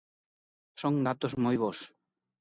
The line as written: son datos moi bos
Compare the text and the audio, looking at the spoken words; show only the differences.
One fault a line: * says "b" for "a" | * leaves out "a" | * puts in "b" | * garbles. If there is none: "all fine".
all fine